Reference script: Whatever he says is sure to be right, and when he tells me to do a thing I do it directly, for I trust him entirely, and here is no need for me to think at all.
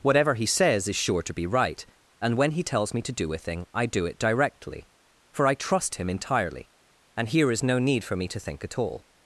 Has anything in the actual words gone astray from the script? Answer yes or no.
no